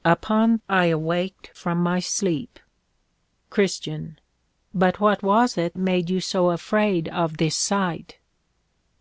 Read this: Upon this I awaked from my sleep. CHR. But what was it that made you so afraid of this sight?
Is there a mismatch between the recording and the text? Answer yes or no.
yes